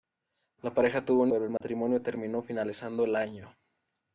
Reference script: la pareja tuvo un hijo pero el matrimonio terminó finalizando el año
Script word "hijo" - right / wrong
wrong